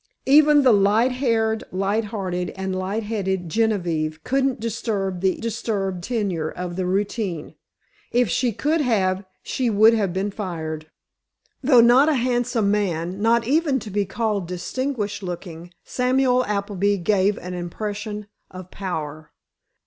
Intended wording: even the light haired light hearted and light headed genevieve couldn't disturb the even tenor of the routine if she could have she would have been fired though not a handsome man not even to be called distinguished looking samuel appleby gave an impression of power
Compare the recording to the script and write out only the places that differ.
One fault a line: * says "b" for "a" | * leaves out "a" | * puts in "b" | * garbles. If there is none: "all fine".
* says "disturb" for "even"